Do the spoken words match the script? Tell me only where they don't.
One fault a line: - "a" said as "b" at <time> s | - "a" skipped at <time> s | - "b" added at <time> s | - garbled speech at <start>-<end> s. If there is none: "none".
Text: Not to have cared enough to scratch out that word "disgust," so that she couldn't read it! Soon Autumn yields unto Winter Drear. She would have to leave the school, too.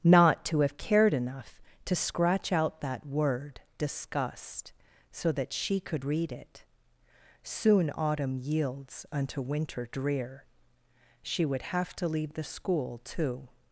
- "couldn't" said as "could" at 5.8 s